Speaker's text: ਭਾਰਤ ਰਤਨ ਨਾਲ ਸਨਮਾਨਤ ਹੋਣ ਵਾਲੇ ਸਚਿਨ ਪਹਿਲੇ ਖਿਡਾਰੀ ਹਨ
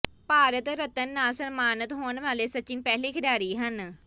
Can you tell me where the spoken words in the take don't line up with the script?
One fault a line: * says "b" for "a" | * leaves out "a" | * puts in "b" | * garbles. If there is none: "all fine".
all fine